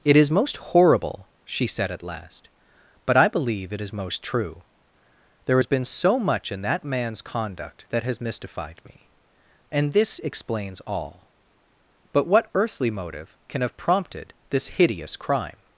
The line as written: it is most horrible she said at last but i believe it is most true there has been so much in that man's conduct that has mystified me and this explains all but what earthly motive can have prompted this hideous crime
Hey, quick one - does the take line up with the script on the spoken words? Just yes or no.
yes